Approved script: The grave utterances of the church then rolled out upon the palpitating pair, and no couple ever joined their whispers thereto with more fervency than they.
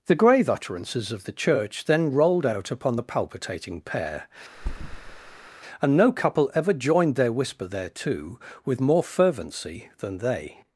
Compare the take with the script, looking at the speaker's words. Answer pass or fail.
fail